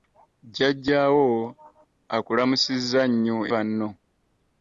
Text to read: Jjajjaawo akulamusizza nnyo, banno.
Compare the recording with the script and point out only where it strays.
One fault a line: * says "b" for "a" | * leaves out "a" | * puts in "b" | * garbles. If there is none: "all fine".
all fine